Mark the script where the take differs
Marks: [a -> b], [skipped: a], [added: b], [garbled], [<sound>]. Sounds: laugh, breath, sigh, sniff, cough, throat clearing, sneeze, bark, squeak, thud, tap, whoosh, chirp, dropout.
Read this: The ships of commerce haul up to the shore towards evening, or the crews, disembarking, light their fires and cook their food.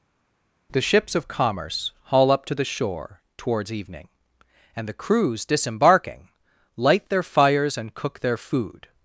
The ships of commerce haul up to the shore towards evening, [or -> and] the crews, disembarking, light their fires and cook their food.